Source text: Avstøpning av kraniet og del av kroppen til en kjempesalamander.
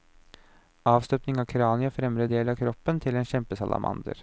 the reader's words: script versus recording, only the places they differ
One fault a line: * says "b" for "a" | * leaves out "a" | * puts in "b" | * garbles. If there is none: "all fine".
* puts in "fremre"